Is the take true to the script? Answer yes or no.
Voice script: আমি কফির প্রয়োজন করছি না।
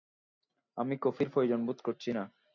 no